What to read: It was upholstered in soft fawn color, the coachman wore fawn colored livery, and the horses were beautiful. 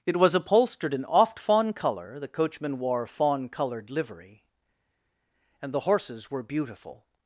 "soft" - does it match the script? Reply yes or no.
no